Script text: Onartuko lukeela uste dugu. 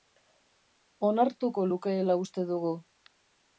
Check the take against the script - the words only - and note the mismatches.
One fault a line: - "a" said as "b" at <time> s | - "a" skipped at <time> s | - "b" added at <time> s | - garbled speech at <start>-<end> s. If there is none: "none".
none